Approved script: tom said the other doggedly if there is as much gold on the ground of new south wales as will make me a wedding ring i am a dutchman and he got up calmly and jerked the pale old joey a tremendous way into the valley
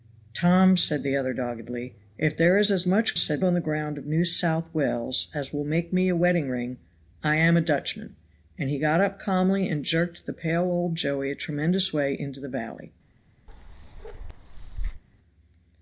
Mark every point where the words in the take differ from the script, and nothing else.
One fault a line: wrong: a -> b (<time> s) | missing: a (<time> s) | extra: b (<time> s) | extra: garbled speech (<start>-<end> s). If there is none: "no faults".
wrong: gold -> said (3.2 s)